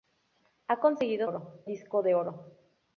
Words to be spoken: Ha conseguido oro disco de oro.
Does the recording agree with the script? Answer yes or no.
yes